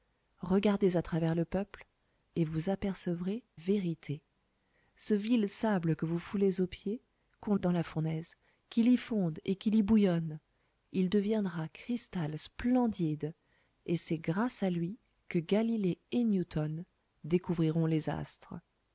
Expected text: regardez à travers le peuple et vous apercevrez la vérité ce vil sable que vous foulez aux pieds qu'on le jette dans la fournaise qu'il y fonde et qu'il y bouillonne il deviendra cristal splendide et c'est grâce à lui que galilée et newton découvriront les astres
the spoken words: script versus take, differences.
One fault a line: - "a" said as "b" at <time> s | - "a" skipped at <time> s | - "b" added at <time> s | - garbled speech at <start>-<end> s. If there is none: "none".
- "la" skipped at 3.4 s
- "le jette" skipped at 7.5 s